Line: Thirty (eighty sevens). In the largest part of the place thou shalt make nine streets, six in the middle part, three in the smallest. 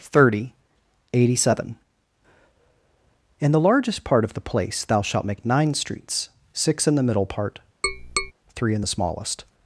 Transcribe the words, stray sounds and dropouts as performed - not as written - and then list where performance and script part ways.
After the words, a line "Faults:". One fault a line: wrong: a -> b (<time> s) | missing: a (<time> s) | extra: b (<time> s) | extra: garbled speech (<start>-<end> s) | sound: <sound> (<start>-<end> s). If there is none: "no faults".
Thirty (eighty seven). In the largest part of the place thou shalt make nine streets, six in the middle part, three in the smallest.
Faults:
wrong: sevens -> seven (1.4 s)
sound: tap (7.8-8.3 s)